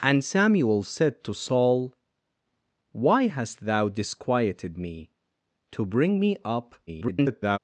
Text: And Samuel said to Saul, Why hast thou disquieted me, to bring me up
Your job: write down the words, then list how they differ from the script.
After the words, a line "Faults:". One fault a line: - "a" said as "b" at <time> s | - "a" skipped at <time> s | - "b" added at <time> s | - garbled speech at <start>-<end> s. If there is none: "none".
And Samuel said to Saul, Why hast thou disquieted me, to bring me up [garbled]
Faults:
- garbled speech at 6.9-7.6 s